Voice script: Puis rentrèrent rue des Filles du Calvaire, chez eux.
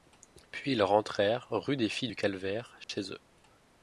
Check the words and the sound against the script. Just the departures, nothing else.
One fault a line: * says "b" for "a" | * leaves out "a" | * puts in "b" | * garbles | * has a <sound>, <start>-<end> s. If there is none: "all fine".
* puts in "ils"
* has a dropout, 2.8-2.9 s